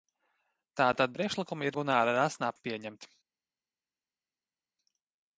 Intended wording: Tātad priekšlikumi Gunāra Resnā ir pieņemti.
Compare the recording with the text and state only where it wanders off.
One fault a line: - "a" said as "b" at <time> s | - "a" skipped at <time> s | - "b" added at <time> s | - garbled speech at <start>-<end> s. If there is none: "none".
none